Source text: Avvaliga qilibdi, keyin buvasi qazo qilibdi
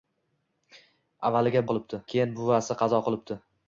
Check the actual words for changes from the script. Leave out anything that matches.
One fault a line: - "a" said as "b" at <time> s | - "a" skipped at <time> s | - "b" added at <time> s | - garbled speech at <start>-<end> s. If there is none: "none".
none